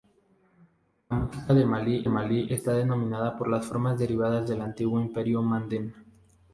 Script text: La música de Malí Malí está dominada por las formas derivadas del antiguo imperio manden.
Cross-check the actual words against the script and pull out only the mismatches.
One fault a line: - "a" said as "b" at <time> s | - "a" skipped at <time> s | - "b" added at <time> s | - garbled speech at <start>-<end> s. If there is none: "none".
none